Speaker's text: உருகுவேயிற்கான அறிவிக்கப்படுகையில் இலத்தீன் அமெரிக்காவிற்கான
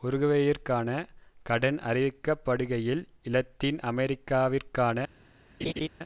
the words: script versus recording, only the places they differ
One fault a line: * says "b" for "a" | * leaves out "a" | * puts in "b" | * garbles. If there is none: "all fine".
* puts in "கடன்"